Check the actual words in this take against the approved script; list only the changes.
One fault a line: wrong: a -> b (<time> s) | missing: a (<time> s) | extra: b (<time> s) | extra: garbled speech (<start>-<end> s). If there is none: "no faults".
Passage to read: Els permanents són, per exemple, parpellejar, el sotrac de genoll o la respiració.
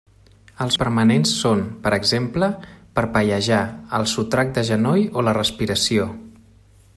no faults